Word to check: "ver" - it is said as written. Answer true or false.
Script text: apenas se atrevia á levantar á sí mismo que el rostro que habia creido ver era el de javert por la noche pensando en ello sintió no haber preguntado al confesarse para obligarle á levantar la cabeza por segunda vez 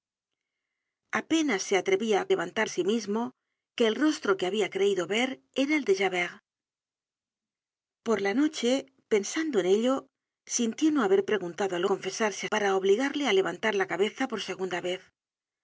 true